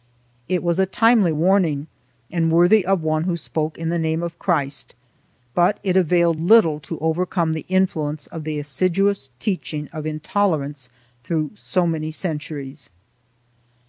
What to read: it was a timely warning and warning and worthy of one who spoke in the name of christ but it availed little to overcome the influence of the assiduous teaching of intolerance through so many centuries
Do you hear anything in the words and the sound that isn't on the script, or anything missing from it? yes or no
yes